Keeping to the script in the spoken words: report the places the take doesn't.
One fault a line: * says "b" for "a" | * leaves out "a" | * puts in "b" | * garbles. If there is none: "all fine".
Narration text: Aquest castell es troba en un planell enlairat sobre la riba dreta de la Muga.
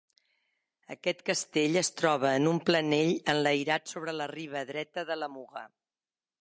all fine